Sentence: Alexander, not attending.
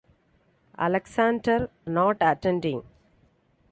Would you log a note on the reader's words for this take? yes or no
no